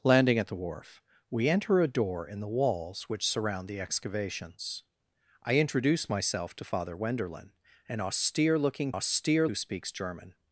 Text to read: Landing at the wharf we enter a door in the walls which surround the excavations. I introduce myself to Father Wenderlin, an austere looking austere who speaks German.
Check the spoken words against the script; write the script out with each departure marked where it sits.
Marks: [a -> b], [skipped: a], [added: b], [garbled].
Landing at the wharf we enter a door in the walls which surround the excavations. I introduce myself to Father Wenderlin, an austere looking austere who speaks German.